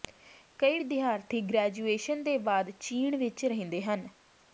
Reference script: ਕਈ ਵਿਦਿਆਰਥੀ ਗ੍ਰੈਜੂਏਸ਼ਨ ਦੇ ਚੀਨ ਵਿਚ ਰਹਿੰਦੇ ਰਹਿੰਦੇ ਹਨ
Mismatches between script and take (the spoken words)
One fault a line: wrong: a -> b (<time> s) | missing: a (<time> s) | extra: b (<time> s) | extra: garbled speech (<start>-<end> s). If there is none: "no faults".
extra: ਬਾਅਦ (2.4 s)
missing: ਰਹਿੰਦੇ (3.8 s)